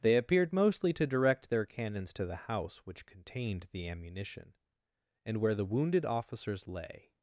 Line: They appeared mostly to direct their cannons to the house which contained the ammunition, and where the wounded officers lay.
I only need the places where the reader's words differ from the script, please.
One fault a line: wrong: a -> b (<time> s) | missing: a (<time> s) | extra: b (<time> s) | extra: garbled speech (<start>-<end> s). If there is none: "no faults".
no faults